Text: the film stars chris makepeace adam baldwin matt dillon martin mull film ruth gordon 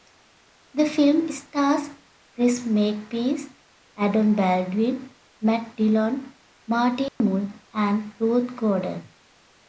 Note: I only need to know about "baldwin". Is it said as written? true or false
true